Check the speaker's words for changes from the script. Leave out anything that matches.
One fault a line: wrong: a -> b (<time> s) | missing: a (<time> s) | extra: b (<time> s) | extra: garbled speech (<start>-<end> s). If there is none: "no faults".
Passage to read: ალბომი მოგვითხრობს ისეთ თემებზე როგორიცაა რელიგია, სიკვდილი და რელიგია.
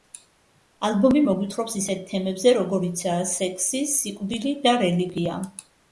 wrong: რელიგია -> სექსი (3.4 s)